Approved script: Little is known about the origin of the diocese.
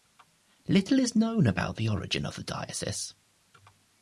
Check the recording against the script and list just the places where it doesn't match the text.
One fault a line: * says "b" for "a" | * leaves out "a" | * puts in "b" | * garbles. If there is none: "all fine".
all fine